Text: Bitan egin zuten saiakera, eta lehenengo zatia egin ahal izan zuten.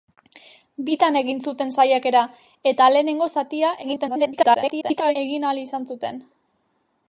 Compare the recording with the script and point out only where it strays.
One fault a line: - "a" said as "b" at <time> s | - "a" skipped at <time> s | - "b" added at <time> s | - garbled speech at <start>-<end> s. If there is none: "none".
- garbled speech at 3.8-5.2 s